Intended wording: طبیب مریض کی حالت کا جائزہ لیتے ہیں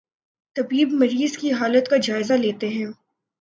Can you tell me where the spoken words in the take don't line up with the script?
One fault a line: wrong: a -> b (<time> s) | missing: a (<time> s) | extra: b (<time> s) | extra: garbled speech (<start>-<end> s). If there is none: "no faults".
no faults